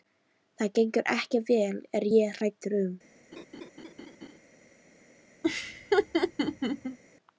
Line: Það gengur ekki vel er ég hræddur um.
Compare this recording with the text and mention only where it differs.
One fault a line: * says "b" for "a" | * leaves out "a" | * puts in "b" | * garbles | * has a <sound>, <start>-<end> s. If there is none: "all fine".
* has a laugh, 3.3-4.4 s
* has a laugh, 5.4-7.0 s